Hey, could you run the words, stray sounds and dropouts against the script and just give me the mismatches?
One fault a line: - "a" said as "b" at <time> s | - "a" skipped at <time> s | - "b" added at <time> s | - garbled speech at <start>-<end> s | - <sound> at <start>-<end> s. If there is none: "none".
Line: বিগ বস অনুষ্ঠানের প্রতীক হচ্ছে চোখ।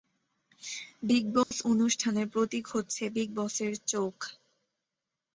- dropout at 1.4-1.5 s
- "বিগ বসের" added at 3.1 s